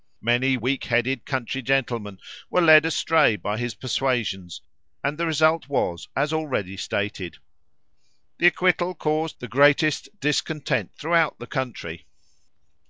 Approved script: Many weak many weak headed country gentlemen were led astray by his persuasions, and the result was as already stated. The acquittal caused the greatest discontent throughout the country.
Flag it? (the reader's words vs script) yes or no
yes